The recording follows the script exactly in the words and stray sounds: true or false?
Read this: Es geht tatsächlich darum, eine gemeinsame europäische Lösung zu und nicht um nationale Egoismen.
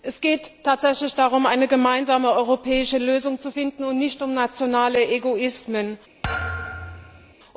false